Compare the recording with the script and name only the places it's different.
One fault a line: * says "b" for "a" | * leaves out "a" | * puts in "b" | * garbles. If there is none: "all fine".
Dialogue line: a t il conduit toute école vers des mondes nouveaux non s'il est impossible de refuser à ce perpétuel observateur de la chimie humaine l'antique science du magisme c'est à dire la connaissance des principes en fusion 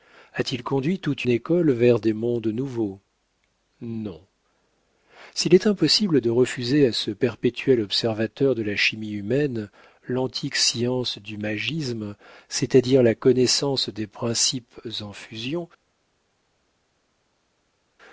all fine